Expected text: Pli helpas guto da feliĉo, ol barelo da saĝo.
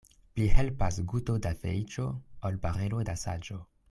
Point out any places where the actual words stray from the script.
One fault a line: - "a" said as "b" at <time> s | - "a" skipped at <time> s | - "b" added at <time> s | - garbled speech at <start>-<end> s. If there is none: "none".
none